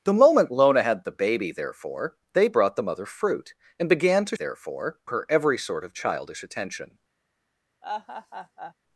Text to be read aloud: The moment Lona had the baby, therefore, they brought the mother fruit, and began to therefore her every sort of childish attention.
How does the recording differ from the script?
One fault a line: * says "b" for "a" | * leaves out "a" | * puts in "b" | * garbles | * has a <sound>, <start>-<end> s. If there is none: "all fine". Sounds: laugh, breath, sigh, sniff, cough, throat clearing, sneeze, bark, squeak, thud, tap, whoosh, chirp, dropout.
* has a laugh, 7.8-8.7 s